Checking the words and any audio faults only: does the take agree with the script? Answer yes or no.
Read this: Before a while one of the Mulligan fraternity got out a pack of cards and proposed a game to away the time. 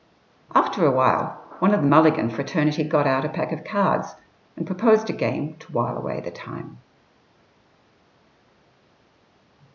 no